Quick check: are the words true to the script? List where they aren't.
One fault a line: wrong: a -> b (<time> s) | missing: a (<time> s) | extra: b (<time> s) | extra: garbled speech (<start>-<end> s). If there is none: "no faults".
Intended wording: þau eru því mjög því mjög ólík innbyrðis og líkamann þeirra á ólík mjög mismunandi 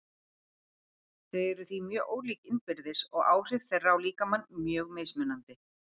missing: því mjög (2.1 s)
wrong: líkamann -> áhrif (3.3 s)
wrong: ólík -> líkamann (4.1 s)